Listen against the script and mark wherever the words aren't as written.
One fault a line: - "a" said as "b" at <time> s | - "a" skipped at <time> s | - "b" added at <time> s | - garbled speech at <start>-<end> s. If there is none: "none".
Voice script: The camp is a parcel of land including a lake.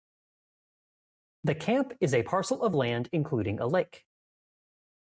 none